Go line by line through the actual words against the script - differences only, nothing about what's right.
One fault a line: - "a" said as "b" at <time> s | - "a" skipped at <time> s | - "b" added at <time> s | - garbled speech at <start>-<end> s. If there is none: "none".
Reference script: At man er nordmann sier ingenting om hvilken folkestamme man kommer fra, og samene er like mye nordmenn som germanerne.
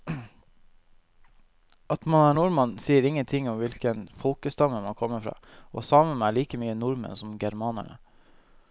none